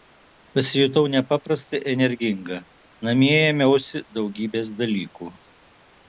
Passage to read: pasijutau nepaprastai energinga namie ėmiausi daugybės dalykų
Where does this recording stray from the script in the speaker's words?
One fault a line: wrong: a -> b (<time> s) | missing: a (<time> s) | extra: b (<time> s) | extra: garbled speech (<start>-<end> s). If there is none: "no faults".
no faults